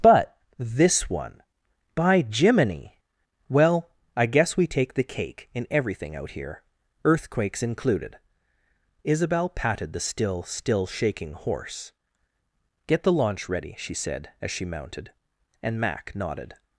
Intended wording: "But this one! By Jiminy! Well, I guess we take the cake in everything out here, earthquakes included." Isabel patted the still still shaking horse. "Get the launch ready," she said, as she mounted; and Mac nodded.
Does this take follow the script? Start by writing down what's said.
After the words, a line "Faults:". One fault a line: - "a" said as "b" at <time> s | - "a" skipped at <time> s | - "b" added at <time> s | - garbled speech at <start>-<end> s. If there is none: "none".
"But this one! By Jiminy! Well, I guess we take the cake in everything out here, earthquakes included." Isabel patted the still still shaking horse. "Get the launch ready," she said, as she mounted; and Mac nodded.
Faults:
none